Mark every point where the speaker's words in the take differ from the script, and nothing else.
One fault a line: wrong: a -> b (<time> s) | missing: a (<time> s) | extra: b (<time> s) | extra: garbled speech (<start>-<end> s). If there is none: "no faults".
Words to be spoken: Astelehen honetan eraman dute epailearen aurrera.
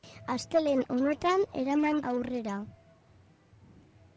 missing: dute epailearen (2.0 s)